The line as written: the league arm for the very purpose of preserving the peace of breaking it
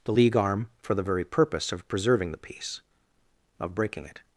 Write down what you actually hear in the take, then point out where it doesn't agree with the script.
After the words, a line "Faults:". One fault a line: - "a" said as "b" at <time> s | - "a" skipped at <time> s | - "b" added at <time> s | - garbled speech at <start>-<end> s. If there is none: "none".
the league arm for the very purpose of preserving the peace of breaking it
Faults:
none